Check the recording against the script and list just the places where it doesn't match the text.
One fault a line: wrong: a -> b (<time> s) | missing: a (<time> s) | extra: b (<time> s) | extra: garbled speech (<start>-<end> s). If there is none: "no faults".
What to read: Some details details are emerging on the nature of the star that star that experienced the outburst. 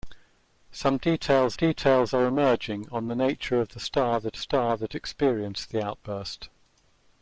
no faults